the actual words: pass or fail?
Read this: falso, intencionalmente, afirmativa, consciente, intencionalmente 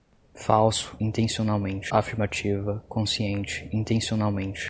pass